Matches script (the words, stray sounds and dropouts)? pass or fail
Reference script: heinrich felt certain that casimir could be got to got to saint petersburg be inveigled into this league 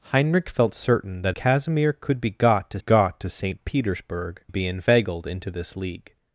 pass